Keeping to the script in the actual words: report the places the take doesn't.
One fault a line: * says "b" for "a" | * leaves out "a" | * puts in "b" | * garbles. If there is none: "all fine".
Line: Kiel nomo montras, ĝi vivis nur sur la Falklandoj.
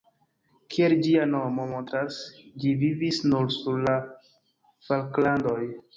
* puts in "ĝia"